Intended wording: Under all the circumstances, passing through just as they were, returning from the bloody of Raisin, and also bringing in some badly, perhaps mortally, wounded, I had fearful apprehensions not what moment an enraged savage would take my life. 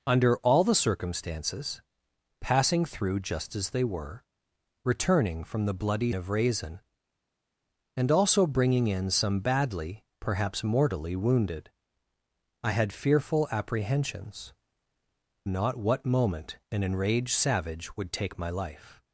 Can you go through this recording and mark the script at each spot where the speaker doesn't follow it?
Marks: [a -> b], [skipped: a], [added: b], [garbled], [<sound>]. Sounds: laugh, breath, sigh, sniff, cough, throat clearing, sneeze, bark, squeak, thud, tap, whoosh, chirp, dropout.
Under all the circumstances, passing through just as they were, returning from the bloody of Raisin, and also bringing in some badly, perhaps mortally, wounded, I had fearful apprehensions not what moment an enraged savage would take my life.